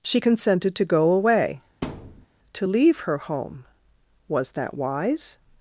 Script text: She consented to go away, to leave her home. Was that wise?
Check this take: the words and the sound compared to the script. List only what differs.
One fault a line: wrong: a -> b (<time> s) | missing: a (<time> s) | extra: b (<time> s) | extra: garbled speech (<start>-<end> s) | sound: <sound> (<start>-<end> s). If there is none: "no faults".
sound: thud (1.8-2.3 s)